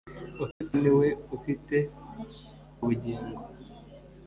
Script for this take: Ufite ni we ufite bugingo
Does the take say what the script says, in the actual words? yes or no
yes